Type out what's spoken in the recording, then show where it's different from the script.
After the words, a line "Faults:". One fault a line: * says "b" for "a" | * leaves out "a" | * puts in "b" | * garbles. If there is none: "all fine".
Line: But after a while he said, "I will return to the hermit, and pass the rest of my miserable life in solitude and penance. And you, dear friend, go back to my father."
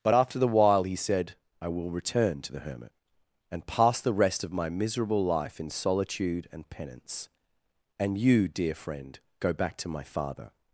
But after the while he said, "I will return to the hermit, and pass the rest of my miserable life in solitude and penance. And you, dear friend, go back to my father."
Faults:
* says "the" for "a"